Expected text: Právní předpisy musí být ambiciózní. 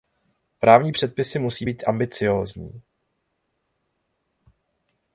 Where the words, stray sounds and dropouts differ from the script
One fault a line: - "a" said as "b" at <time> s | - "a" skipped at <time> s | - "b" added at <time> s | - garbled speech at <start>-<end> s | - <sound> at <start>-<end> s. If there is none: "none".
none